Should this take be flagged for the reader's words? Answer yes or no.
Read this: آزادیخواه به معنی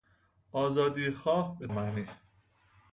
no